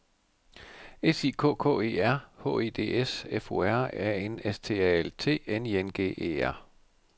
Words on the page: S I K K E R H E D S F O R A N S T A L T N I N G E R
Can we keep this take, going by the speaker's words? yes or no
yes